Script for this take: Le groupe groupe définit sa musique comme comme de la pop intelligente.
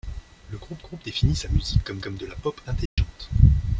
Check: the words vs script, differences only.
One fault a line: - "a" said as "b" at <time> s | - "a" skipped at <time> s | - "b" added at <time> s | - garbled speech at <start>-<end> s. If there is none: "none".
none